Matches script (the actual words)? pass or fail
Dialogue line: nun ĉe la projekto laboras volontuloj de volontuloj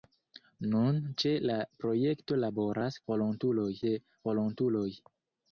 pass